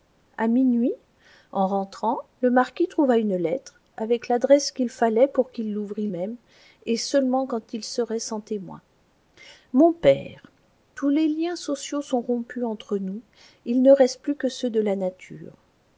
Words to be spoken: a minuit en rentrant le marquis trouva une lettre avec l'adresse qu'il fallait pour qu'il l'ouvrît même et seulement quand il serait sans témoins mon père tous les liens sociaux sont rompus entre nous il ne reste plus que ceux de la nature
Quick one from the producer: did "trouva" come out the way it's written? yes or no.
yes